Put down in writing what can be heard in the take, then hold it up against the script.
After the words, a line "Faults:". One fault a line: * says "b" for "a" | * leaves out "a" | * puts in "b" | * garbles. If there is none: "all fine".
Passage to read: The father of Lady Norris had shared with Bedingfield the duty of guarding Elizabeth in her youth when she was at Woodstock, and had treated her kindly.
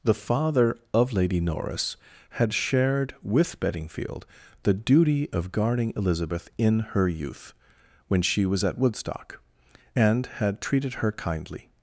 The father of Lady Norris had shared with Bedingfield the duty of guarding Elizabeth in her youth when she was at Woodstock, and had treated her kindly.
Faults:
all fine